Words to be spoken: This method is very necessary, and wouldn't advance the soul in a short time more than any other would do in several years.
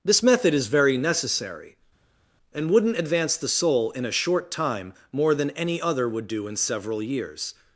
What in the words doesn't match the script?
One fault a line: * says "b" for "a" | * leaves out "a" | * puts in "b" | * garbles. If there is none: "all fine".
all fine